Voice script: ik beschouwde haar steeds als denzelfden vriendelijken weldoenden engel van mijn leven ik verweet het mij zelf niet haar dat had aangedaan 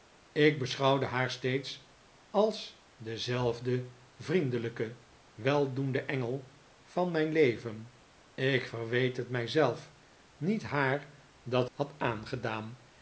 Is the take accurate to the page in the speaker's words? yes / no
yes